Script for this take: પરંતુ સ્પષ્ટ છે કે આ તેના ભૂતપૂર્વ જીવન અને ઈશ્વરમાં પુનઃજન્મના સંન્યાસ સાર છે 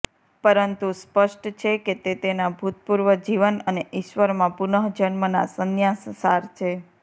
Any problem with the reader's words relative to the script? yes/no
yes